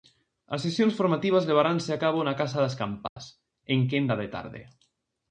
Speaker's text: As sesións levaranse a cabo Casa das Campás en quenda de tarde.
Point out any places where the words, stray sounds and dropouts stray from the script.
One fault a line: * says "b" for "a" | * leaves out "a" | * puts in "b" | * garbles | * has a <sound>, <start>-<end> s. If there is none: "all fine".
* puts in "formativas"
* puts in "na"
* has a dropout, 3.1-3.2 s